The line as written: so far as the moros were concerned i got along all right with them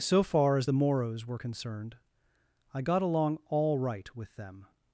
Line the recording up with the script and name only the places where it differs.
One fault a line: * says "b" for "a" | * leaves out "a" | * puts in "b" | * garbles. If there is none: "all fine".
all fine